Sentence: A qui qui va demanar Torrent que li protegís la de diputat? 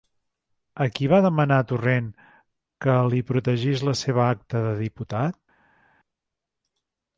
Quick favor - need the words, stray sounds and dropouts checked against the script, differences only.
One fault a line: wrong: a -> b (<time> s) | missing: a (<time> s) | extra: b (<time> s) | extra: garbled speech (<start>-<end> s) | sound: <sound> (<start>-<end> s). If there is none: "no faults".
missing: qui (1.1 s)
extra: seva acta (4.0 s)